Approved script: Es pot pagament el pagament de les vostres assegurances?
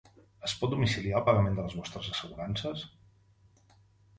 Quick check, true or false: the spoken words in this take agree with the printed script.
false